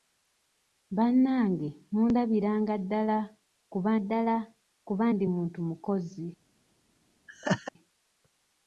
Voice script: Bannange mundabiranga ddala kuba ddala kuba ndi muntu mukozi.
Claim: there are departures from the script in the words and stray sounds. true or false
true